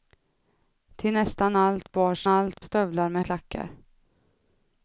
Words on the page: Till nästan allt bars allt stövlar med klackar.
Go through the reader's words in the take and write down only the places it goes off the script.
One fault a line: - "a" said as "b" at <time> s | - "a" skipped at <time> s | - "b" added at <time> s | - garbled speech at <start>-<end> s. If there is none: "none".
none